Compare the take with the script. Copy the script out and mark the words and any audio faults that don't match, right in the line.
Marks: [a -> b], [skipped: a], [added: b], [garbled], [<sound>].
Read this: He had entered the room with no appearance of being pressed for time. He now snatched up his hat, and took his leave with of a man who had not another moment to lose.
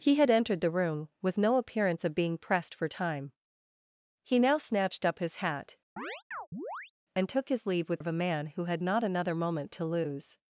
He had entered the room with no appearance of being pressed for time. He now snatched up his hat, [chirp] and took his leave with of a man who had not another moment to lose.